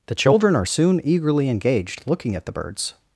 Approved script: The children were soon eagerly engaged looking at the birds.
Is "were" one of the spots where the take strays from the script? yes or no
yes